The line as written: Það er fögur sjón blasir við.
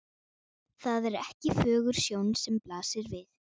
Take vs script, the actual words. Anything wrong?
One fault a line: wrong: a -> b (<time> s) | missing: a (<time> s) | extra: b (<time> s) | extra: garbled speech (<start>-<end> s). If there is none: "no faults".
extra: ekki (1.2 s)
extra: sem (2.5 s)